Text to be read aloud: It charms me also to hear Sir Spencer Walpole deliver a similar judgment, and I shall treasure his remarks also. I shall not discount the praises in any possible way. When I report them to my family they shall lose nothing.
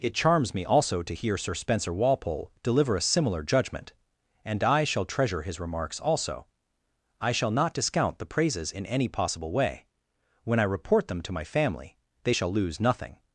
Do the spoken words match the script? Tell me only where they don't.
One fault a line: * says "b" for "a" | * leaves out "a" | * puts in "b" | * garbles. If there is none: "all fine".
all fine